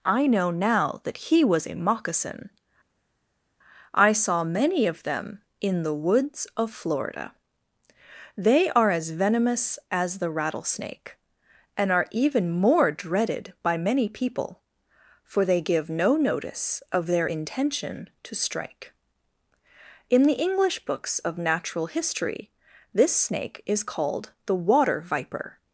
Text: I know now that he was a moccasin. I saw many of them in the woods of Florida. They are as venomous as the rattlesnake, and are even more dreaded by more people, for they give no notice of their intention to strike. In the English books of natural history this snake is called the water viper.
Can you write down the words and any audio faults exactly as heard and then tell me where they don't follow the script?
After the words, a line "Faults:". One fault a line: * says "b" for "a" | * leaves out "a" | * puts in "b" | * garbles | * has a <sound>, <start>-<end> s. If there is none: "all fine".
I know now that he was a moccasin. I saw many of them in the woods of Florida. They are as venomous as the rattlesnake, and are even more dreaded by many people, for they give no notice of their intention to strike. In the English books of natural history this snake is called the water viper.
Faults:
* says "many" for "more"